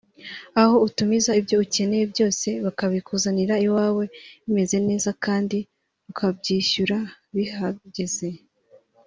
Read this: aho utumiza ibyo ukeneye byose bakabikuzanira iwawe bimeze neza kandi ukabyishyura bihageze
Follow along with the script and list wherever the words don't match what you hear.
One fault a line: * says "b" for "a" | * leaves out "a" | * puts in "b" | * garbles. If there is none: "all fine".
all fine